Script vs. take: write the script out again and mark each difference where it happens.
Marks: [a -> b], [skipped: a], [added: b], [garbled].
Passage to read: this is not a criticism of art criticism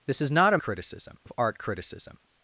this is not a criticism of art criticism